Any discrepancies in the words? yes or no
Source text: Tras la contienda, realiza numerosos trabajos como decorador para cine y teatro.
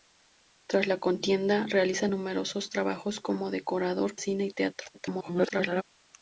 yes